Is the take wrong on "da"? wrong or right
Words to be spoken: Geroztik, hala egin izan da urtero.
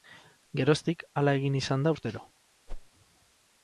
right